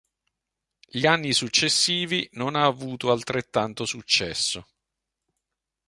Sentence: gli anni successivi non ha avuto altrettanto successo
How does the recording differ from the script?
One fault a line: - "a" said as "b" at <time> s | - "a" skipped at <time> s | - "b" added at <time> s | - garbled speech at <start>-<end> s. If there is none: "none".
none